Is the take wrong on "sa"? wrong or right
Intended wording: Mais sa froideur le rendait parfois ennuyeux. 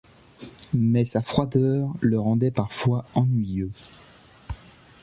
right